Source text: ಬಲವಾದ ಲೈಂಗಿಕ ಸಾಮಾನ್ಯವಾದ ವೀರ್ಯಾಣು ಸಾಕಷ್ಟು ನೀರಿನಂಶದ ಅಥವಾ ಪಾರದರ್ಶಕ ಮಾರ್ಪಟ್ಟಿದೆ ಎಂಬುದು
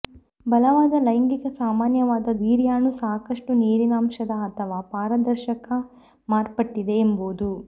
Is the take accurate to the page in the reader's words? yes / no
yes